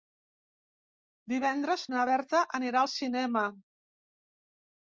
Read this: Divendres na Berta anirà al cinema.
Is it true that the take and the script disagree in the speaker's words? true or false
false